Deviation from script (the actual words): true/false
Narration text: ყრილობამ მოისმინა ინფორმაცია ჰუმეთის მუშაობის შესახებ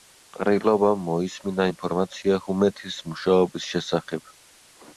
false